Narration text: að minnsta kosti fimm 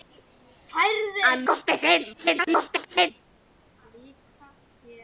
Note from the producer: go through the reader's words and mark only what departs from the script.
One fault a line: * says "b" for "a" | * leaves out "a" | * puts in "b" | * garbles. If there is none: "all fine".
* leaves out "minnsta"
* garbles